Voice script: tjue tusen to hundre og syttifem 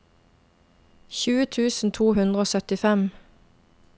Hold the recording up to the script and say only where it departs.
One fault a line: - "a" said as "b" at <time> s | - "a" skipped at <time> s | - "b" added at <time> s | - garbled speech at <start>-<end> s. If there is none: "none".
none